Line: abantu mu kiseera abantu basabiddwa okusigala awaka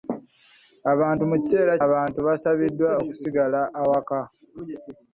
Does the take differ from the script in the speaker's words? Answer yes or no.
no